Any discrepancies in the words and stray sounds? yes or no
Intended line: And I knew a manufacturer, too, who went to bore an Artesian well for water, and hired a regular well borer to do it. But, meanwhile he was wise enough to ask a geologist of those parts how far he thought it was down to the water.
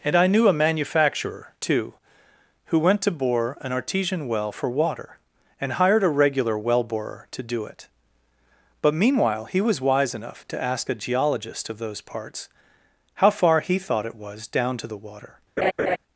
yes